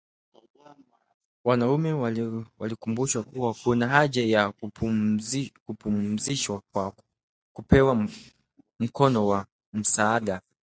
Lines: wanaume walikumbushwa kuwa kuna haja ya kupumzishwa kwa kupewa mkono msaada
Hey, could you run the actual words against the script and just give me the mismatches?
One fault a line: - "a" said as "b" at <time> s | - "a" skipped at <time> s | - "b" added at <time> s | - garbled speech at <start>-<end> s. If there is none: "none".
- "wa" added at 9.3 s